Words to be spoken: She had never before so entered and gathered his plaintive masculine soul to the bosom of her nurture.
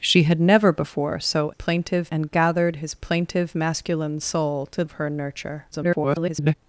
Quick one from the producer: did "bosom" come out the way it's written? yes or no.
no